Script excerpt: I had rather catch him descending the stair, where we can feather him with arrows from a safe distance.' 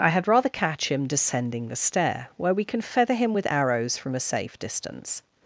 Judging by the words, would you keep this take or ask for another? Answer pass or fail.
pass